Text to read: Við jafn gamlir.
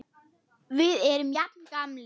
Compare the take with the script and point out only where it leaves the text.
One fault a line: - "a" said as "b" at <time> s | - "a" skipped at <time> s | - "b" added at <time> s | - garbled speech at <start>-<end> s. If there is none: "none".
- "erum" added at 1.1 s